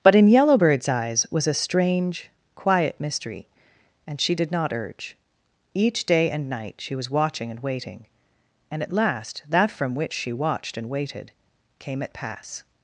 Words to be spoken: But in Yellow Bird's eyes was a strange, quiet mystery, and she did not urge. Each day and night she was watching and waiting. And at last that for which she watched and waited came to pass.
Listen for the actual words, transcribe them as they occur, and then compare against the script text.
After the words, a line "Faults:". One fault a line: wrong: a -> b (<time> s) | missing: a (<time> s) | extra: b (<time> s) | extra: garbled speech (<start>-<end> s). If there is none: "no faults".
But in Yellow Bird's eyes was a strange, quiet mystery, and she did not urge. Each day and night she was watching and waiting. And at last that from which she watched and waited came at pass.
Faults:
wrong: for -> from (9.7 s)
wrong: to -> at (12.0 s)